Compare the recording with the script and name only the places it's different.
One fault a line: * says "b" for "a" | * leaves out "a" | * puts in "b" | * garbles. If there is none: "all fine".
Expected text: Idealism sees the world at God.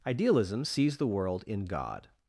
* says "in" for "at"